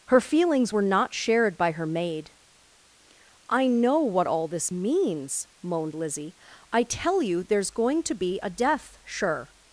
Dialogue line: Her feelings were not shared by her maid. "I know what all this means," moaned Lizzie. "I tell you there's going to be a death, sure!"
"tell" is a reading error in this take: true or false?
false